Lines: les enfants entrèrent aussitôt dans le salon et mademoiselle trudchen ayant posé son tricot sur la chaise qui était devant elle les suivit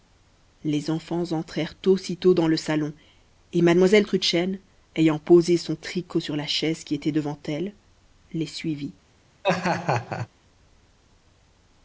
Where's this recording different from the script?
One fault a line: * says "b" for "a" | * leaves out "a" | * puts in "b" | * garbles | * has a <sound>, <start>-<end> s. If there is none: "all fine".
* has a laugh, 9.4-10.3 s